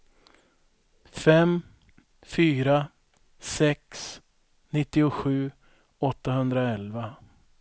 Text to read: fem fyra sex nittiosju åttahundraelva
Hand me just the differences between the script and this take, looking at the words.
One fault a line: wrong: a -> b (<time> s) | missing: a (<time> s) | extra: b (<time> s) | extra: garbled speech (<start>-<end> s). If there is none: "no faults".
no faults